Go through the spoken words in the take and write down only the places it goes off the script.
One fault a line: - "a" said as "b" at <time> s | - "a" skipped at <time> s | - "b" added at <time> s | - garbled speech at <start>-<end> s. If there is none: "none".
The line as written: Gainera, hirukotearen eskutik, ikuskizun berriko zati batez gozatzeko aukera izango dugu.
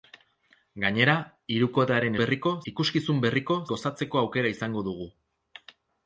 - "eskutik" said as "berriko" at 2.2 s
- "zati batez" skipped at 3.6 s